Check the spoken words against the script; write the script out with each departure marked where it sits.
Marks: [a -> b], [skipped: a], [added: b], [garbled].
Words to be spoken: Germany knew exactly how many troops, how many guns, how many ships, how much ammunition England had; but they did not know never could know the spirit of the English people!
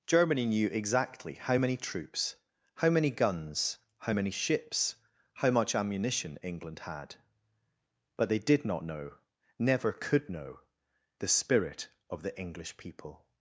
Germany knew exactly how many troops, how many guns, how many ships, how much ammunition England had; but they did not know never could know the spirit of the English people!